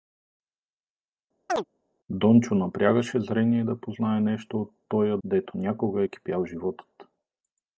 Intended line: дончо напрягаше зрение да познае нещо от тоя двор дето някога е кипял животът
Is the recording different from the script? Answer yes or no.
yes